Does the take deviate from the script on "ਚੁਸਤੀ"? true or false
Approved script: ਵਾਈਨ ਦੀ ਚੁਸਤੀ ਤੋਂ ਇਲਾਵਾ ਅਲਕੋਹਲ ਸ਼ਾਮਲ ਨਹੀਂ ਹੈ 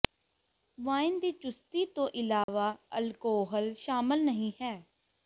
false